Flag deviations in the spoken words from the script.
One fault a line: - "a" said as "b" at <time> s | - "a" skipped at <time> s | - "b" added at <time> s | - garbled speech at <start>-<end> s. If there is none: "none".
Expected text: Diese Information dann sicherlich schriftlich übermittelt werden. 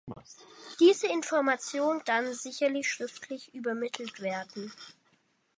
none